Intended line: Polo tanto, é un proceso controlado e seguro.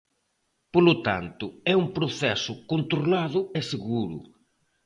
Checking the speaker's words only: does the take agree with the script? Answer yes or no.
yes